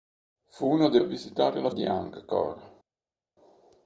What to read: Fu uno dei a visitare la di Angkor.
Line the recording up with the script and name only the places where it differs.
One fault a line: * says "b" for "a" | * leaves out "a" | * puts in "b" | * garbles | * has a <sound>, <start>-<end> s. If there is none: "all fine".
all fine